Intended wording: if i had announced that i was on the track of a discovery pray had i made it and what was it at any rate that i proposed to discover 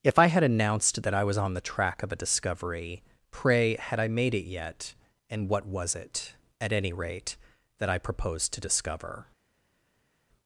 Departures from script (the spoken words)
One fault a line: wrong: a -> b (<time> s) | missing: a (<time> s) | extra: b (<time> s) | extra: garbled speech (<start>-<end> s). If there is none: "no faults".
extra: yet (4.5 s)